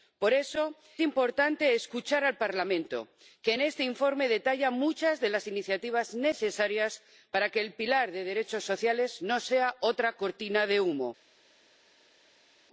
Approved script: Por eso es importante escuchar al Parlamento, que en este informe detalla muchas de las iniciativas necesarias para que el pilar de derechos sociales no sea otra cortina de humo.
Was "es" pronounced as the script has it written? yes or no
no